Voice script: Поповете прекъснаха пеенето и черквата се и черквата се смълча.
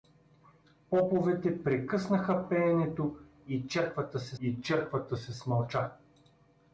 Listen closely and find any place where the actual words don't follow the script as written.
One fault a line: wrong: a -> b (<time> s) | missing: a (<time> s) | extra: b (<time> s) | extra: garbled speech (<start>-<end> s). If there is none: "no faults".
no faults